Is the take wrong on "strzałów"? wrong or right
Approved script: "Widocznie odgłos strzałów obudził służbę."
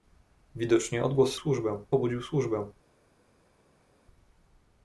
wrong